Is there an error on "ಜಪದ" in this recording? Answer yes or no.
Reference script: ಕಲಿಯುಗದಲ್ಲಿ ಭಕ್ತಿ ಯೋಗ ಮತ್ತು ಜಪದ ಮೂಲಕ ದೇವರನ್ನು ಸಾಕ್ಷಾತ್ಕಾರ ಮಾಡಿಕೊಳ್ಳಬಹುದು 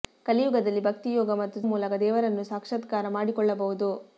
yes